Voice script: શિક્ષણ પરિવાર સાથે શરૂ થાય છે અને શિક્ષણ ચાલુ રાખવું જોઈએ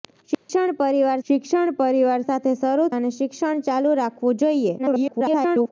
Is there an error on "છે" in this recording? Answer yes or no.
yes